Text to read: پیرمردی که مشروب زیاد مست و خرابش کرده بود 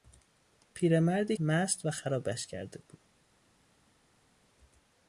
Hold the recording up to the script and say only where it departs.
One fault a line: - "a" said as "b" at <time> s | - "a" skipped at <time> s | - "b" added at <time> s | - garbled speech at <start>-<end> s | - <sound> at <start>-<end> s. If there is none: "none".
- "که مشروب زیاد" skipped at 1.4 s